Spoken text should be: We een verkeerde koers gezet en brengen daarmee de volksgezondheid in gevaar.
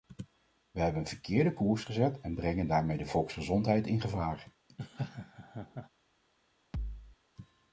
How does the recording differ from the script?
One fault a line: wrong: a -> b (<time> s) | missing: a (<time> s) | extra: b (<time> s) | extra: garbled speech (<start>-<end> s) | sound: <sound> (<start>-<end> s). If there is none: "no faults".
extra: hebben (0.8 s)
sound: laugh (4.7-5.9 s)
sound: thud (6.7-7.2 s)